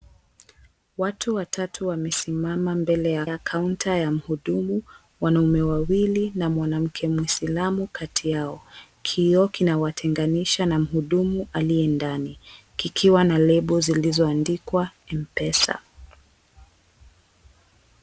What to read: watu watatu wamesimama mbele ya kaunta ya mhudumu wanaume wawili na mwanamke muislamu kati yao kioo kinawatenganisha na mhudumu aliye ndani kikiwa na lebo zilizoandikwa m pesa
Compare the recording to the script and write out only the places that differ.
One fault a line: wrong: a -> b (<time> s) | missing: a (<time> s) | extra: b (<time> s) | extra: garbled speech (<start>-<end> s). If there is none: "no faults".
extra: ya (3.2 s)